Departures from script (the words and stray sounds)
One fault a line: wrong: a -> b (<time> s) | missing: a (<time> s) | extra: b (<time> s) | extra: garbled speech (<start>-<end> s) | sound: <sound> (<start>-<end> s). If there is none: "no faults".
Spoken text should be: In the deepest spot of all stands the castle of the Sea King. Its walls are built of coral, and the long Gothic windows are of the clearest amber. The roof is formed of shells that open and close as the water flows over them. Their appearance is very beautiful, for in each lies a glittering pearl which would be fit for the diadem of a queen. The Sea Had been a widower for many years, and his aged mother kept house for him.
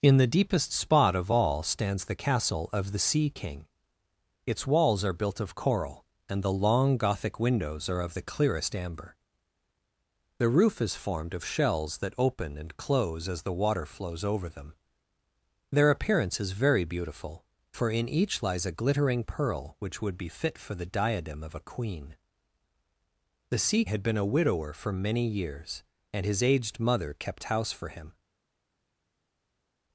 no faults